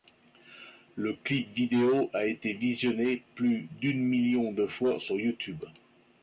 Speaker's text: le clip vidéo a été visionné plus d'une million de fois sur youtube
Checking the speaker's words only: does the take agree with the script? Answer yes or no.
yes